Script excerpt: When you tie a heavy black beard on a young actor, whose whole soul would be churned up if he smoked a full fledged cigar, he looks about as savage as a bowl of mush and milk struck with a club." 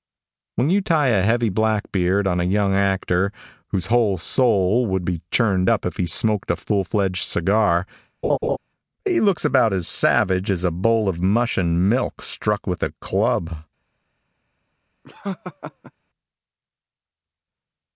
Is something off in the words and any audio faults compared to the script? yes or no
yes